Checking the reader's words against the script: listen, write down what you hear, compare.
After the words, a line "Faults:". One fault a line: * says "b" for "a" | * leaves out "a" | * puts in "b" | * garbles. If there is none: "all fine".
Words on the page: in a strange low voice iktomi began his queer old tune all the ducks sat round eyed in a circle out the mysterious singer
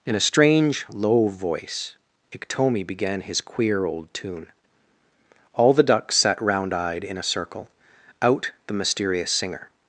in a strange low voice iktomi began his queer old tune all the ducks sat round eyed in a circle out the mysterious singer
Faults:
all fine